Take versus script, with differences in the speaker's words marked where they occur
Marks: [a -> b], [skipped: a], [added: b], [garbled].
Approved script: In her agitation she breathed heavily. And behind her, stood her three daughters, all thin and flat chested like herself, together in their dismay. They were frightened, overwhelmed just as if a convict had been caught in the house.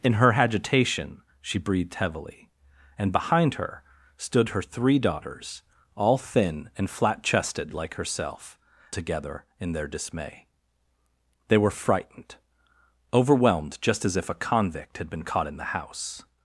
In her agitation she breathed heavily. And behind her, stood her three daughters, all thin and flat chested like herself, together in their dismay. They were frightened, overwhelmed just as if a convict had been caught in the house.